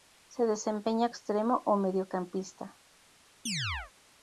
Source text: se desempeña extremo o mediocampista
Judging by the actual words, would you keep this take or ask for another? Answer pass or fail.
pass